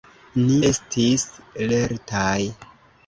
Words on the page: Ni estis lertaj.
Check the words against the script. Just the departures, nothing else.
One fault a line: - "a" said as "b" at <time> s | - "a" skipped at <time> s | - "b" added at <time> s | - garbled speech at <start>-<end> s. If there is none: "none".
none